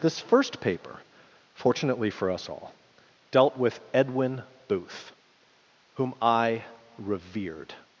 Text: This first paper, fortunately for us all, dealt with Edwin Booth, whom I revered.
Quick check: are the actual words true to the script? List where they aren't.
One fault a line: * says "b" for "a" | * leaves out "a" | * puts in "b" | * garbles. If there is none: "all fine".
all fine